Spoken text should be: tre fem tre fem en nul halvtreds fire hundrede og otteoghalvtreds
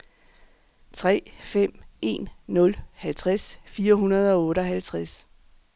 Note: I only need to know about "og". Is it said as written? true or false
true